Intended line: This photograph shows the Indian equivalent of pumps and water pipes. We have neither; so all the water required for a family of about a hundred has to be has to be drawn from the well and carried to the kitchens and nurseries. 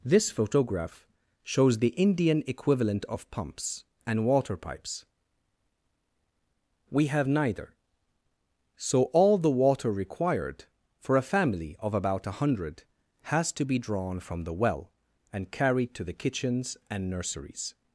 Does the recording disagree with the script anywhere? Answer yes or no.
yes